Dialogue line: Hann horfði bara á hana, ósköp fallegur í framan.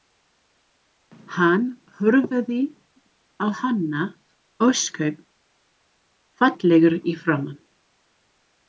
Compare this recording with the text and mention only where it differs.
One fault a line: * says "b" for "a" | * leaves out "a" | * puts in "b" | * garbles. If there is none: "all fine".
* leaves out "bara"